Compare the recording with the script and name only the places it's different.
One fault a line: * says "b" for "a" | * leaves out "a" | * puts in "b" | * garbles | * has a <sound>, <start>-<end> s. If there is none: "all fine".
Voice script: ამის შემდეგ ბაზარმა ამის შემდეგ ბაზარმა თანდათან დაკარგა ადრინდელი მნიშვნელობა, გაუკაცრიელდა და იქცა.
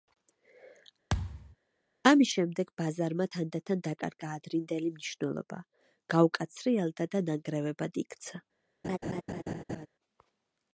* has a thud, 1.1-1.6 s
* leaves out "ამის შემდეგ ბაზარმა"
* puts in "ნანგრევებად"
* has a laugh, 8.8-9.9 s